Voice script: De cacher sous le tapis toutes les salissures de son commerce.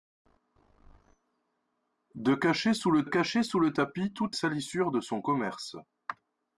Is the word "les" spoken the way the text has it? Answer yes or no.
no